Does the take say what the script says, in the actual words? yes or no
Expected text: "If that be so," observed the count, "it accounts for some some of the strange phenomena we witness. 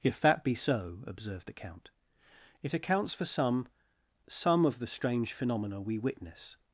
yes